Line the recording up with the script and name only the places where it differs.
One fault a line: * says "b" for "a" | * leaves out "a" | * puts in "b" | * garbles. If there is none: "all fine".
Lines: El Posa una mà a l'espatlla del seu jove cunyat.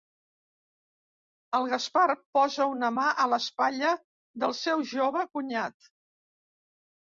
* puts in "Gaspar"